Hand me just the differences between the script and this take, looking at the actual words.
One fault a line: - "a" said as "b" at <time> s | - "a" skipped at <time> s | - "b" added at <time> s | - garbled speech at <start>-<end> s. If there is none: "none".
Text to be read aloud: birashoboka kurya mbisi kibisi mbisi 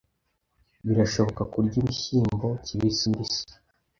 - "mbisi" said as "ibishyimbo" at 1.8 s